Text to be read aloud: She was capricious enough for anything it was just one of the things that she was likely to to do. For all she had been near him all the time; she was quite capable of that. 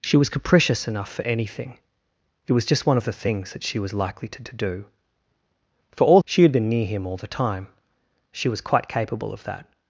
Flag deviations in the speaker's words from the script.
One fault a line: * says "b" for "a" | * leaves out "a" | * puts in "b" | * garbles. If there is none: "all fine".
all fine